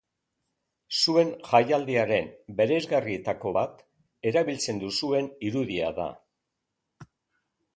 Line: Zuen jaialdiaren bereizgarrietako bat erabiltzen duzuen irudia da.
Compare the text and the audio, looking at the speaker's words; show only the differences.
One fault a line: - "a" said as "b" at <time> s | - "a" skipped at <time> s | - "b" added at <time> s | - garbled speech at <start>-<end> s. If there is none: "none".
none